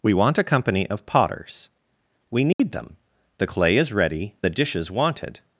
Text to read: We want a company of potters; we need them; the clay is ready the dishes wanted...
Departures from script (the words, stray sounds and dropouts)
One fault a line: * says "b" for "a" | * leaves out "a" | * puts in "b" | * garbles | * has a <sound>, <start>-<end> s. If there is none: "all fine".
* has a dropout, 2.5-2.6 s